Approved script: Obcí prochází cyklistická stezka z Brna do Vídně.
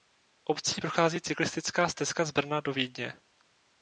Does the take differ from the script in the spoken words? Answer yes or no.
no